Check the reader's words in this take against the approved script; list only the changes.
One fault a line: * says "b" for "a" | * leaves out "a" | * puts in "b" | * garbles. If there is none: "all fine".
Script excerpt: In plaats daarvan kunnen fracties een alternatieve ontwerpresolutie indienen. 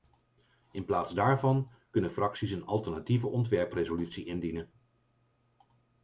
all fine